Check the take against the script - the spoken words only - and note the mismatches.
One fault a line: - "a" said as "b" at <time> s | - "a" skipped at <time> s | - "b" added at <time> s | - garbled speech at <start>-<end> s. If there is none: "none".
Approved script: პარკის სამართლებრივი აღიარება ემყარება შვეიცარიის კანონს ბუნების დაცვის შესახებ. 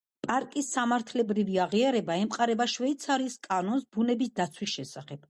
none